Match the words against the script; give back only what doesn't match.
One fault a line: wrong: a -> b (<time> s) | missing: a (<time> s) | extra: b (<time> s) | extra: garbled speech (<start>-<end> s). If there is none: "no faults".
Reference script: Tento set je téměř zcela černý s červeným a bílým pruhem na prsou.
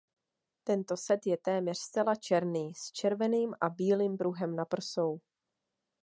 no faults